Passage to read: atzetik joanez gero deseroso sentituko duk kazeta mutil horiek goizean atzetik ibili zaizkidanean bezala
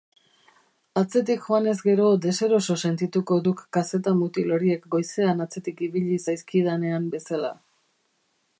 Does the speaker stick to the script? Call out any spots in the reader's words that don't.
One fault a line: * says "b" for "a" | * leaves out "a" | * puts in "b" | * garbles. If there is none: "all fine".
all fine